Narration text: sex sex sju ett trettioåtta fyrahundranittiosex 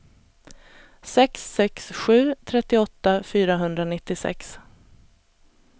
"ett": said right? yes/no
no